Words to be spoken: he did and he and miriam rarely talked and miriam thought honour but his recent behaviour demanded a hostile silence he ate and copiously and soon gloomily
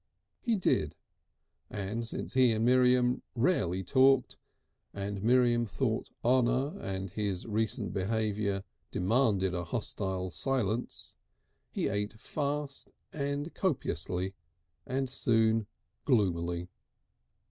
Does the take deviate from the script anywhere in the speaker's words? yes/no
yes